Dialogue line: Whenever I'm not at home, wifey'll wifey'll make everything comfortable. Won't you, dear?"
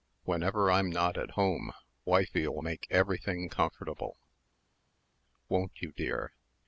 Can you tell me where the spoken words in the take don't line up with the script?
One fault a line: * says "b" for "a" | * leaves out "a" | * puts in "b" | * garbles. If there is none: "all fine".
* leaves out "wifey'll"